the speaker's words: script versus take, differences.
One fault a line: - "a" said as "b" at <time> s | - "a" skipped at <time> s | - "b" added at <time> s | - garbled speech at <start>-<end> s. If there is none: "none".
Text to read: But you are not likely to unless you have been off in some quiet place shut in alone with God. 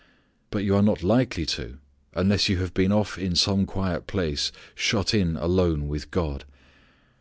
none